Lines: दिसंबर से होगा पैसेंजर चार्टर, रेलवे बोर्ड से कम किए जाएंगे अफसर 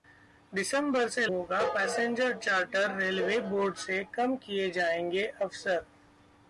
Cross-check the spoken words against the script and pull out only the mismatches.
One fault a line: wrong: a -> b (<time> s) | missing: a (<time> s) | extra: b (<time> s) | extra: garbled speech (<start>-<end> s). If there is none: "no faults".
no faults